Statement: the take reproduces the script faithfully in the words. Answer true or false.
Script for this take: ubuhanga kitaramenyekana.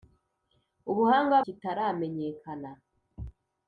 true